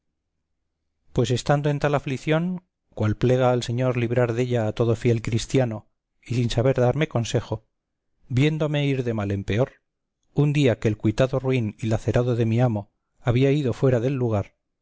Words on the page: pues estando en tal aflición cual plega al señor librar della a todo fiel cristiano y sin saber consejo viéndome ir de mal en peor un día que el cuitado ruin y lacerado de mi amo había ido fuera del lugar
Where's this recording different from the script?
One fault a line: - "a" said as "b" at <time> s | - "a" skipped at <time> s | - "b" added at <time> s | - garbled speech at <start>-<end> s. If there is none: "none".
- "darme" added at 6.8 s